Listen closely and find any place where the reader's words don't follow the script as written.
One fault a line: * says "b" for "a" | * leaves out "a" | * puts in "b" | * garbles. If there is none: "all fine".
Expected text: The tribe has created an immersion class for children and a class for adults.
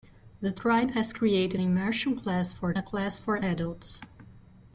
* leaves out "an"
* leaves out "children and"